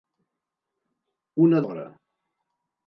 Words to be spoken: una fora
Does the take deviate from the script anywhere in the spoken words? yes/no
no